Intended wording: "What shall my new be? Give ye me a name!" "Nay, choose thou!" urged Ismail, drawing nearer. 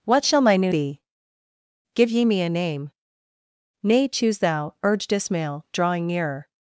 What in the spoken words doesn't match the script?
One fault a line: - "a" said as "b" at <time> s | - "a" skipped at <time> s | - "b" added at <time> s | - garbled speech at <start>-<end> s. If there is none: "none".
none